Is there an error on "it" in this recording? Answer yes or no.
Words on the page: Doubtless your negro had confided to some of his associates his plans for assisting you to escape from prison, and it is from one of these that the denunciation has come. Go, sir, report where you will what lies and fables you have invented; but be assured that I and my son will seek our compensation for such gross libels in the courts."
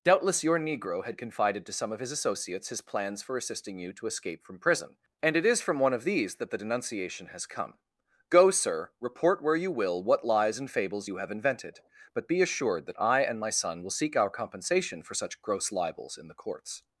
no